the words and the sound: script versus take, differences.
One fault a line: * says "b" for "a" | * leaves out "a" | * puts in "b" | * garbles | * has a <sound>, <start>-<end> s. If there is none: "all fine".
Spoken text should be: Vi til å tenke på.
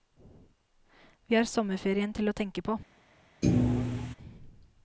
* puts in "har sommerferien"
* has a thud, 3.4-4.2 s